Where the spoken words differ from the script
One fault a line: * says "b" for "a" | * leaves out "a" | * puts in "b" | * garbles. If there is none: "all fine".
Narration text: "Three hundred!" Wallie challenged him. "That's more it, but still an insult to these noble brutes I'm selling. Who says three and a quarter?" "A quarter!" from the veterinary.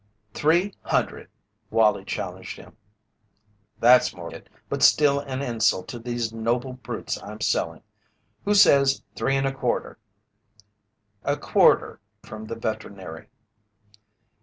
all fine